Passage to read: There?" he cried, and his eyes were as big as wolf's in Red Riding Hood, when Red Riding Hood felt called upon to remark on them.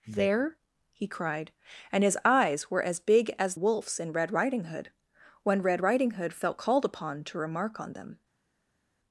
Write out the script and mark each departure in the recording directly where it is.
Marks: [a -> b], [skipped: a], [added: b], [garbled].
There?" he cried, and his eyes were as big as wolf's in Red Riding Hood, when Red Riding Hood felt called upon to remark on them.